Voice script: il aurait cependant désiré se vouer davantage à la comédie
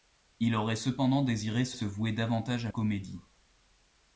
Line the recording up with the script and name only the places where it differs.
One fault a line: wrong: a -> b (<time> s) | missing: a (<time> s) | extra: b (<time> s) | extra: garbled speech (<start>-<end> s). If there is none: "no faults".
extra: se (1.7 s)
missing: la (2.7 s)